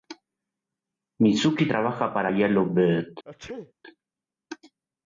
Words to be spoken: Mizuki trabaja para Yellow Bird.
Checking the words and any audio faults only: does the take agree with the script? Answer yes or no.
no